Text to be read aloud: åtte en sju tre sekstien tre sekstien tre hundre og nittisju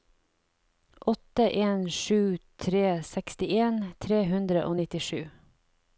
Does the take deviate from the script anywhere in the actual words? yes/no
yes